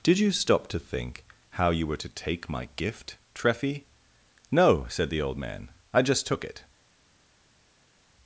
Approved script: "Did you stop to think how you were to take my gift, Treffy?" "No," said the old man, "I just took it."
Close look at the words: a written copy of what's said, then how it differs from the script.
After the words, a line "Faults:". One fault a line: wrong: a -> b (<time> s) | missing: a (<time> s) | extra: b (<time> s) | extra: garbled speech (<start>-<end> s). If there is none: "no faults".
"Did you stop to think how you were to take my gift, Treffy?" "No," said the old man, "I just took it."
Faults:
no faults